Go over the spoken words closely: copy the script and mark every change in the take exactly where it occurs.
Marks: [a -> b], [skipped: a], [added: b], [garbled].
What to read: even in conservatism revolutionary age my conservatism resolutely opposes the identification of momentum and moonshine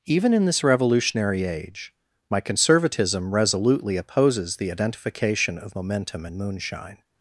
even in [conservatism -> this] revolutionary age my conservatism resolutely opposes the identification of momentum and moonshine